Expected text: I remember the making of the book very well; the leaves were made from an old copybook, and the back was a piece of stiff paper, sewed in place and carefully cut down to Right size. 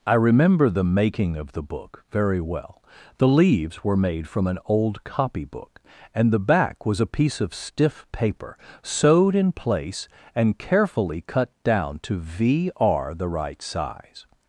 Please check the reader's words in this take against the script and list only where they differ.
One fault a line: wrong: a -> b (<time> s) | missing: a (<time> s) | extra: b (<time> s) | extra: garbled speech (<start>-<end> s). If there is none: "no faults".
extra: V r the (12.2 s)